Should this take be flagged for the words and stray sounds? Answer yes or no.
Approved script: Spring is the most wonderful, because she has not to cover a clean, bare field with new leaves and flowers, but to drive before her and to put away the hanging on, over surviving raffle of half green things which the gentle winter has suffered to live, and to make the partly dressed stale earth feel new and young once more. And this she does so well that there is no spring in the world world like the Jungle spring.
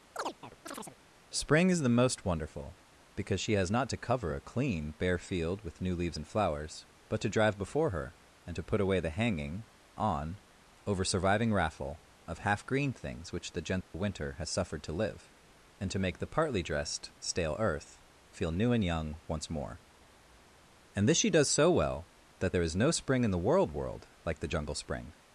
yes